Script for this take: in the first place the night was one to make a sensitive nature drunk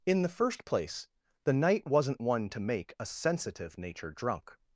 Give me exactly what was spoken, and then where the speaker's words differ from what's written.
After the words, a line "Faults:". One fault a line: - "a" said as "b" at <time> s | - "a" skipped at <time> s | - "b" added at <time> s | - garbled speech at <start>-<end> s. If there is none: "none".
in the first place the night wasn't one to make a sensitive nature drunk
Faults:
- "was" said as "wasn't" at 1.9 s